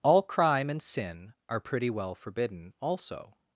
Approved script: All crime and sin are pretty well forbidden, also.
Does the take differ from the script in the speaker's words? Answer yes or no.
no